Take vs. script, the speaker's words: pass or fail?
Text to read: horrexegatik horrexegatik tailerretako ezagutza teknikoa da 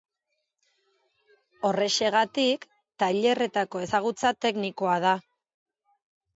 fail